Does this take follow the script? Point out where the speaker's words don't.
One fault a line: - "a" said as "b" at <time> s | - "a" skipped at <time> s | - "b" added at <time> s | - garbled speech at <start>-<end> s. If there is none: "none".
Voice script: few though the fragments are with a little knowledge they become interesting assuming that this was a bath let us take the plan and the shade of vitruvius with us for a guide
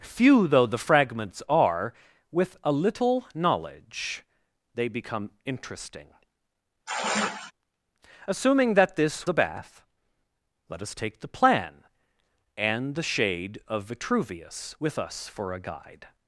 - "was" skipped at 9.3 s